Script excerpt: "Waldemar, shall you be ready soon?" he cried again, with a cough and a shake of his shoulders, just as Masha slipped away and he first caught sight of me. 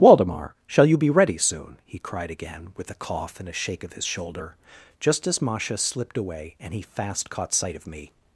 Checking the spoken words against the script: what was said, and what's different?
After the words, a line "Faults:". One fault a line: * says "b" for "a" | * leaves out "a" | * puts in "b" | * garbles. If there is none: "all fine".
"Waldemar, shall you be ready soon?" he cried again, with a cough and a shake of his shoulder, just as Masha slipped away and he fast caught sight of me.
Faults:
* says "shoulder" for "shoulders"
* says "fast" for "first"